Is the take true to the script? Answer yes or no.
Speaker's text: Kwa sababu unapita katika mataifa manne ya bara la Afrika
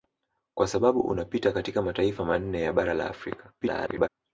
no